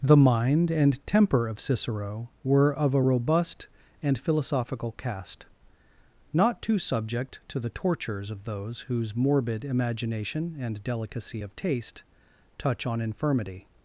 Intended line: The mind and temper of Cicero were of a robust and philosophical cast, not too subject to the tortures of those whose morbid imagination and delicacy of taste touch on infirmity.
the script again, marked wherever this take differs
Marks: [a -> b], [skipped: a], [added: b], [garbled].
The mind and temper of Cicero were of a robust and philosophical cast, not too subject to the tortures of those whose morbid imagination and delicacy of taste touch on infirmity.